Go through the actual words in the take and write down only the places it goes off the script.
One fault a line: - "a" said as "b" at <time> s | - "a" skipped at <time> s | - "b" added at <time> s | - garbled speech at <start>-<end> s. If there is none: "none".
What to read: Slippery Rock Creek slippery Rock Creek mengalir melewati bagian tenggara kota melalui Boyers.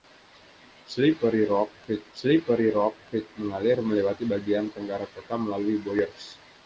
none